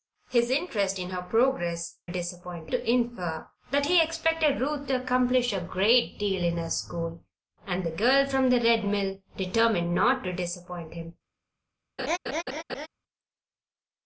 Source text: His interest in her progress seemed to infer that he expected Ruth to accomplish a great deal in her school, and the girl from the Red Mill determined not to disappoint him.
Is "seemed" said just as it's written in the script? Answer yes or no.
no